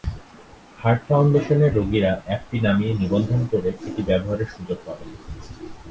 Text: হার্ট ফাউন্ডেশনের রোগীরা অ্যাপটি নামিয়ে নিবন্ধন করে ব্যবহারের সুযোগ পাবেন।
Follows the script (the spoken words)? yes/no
no